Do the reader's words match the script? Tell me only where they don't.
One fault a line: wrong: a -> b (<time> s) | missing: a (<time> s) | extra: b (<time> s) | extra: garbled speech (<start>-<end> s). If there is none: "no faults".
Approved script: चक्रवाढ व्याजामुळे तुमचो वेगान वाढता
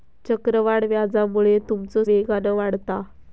no faults